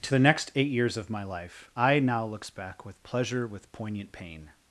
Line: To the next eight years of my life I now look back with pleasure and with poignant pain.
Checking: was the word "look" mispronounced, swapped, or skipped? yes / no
yes